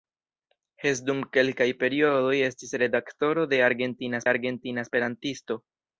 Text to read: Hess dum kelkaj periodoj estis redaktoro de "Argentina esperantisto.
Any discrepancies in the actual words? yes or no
yes